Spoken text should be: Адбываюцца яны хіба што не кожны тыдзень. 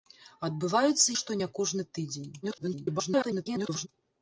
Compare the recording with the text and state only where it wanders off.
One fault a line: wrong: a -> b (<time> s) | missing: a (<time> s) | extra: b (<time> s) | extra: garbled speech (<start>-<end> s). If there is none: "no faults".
missing: яны хіба (1.2 s)
extra: garbled speech (2.4-3.9 s)